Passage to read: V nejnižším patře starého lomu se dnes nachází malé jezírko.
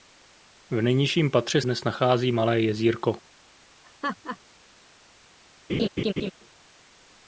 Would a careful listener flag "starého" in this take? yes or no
yes